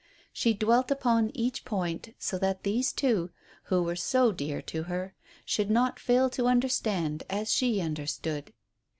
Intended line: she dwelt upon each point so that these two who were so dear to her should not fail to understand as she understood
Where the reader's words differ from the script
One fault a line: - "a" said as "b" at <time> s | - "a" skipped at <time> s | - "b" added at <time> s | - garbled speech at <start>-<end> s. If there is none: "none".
none